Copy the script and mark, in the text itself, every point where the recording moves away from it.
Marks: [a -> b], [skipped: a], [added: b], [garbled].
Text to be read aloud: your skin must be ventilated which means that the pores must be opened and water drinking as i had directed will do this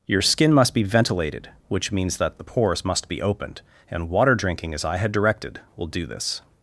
your skin must be ventilated which means that the pores must be opened and water drinking as i had directed will do this